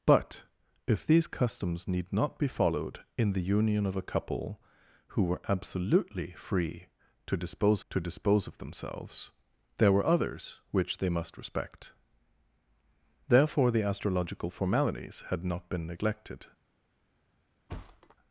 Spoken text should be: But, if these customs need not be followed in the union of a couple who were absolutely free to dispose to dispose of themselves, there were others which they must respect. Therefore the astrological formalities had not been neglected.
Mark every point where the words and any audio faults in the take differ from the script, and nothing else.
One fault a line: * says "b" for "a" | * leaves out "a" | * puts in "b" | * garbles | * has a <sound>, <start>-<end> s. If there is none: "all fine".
* has a thud, 17.7-18.2 s